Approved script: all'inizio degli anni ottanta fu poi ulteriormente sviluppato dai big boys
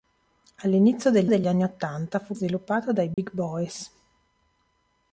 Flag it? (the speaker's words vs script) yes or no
yes